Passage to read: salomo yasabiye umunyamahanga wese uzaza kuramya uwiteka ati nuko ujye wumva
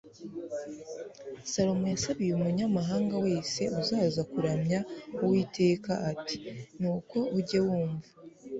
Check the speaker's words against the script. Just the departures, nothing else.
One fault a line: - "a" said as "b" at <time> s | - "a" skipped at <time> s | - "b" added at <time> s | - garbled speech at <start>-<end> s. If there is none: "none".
none